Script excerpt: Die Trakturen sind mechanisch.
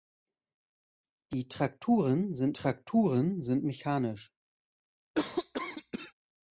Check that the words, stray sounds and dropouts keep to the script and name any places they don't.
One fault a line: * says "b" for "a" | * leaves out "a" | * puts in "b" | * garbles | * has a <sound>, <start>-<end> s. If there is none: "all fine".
* puts in "Trakturen sind"
* has a cough, 5.1-6.1 s